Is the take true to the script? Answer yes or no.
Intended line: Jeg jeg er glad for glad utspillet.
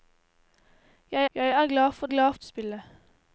yes